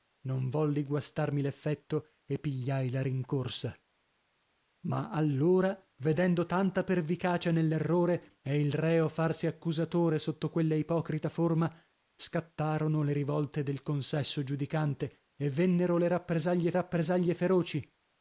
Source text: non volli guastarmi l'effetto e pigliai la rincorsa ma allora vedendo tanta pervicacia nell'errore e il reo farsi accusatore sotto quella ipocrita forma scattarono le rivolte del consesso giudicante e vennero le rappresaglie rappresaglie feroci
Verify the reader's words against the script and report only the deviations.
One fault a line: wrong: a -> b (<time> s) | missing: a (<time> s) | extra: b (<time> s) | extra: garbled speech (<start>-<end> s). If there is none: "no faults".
no faults